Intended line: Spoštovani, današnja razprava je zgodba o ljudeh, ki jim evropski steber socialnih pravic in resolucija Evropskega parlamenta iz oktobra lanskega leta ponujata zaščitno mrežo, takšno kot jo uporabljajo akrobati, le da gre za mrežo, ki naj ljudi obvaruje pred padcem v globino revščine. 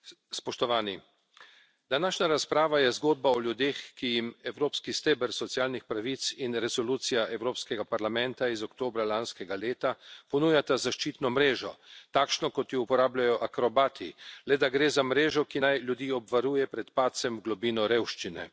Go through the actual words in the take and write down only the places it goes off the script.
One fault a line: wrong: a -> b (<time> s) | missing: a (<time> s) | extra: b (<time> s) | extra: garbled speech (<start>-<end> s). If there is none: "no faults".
no faults